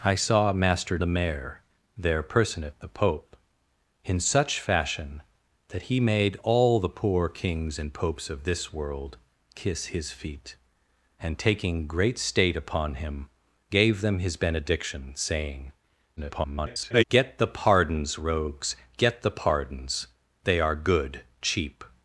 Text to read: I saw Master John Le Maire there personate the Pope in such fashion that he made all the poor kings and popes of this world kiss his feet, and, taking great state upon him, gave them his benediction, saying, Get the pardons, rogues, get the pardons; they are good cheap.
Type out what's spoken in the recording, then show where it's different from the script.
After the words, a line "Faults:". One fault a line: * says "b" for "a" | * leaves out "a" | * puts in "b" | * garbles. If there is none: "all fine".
I saw Master Le Maire there personate the Pope in such fashion that he made all the poor kings and popes of this world kiss his feet, and, taking great state upon him, gave them his benediction, saying, [garbled] Get the pardons, rogues, get the pardons; they are good cheap.
Faults:
* leaves out "John"
* garbles